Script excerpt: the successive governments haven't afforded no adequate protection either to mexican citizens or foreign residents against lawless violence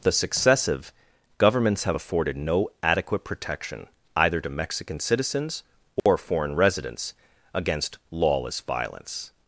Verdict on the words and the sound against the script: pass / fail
fail